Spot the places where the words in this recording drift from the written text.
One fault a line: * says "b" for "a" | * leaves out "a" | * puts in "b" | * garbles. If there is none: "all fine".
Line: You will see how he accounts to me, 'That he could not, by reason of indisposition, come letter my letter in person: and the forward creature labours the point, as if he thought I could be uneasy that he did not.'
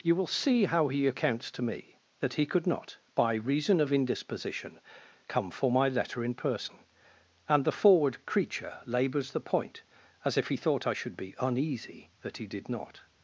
* says "for" for "letter"
* says "should" for "could"